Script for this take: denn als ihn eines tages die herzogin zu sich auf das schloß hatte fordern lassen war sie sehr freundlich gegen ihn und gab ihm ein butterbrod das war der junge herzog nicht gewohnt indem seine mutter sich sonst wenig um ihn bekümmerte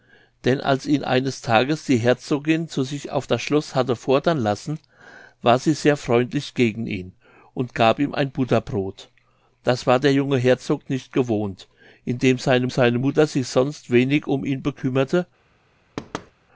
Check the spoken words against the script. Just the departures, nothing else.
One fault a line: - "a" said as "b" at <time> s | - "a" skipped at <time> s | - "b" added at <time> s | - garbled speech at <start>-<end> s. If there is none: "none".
- "seine" added at 12.7 s